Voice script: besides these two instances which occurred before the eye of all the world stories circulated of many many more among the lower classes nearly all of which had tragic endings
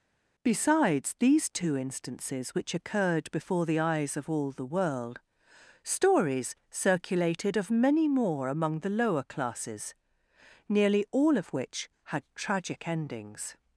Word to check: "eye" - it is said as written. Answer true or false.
false